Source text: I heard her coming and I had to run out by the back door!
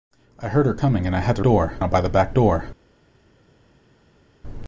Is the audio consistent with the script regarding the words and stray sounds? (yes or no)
no